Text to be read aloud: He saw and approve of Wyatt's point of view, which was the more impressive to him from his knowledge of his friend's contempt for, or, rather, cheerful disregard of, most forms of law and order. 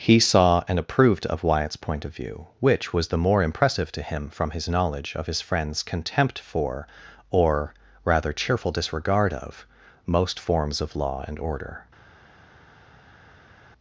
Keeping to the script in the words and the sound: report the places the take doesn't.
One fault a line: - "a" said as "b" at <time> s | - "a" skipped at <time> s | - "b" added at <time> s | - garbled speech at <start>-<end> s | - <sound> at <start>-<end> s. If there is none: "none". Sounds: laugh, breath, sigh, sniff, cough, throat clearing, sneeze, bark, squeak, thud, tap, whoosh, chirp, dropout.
- "approve" said as "approved" at 0.8 s